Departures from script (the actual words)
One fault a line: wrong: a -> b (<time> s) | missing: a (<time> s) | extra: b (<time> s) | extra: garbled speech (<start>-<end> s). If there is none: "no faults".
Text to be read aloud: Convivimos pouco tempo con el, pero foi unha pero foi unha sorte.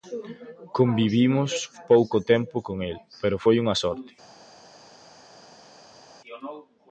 missing: pero foi unha (3.7 s)